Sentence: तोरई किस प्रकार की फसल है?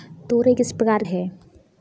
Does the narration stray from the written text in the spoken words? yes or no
yes